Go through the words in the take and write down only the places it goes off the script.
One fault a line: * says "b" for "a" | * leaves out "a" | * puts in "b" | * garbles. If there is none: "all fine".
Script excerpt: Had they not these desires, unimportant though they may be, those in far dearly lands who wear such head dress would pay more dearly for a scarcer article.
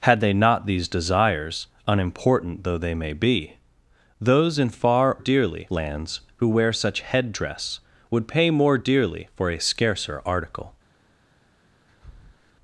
all fine